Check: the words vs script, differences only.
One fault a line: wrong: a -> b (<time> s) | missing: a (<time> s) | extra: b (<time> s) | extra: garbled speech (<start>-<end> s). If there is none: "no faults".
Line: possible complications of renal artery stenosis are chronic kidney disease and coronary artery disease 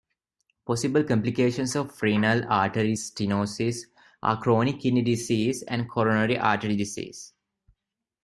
no faults